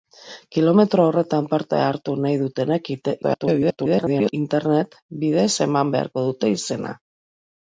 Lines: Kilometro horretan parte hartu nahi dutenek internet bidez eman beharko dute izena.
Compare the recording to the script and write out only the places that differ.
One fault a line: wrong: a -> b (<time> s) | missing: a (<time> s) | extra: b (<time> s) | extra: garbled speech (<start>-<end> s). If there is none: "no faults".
extra: garbled speech (3.2-4.3 s)